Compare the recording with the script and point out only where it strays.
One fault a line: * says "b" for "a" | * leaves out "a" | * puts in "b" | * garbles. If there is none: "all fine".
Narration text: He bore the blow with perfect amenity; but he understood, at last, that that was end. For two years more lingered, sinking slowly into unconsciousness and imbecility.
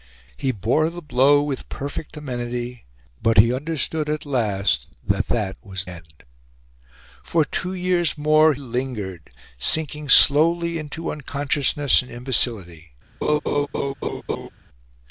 all fine